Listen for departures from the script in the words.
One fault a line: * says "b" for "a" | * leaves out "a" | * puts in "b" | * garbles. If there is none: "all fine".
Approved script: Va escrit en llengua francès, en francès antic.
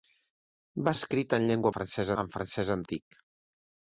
all fine